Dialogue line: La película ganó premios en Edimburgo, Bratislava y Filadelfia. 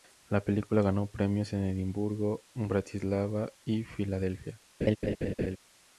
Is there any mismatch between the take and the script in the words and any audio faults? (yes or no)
yes